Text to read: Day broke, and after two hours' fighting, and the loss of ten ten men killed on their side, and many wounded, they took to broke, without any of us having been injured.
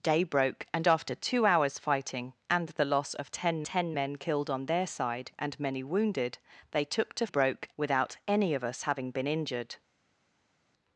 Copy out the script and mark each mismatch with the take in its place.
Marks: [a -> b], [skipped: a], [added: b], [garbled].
Day broke, and after two hours' fighting, and the loss of ten ten men killed on their side, and many wounded, they took to broke, without any of us having been injured.